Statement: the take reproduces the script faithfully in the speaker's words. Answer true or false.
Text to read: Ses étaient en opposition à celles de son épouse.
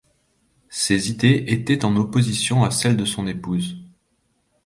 false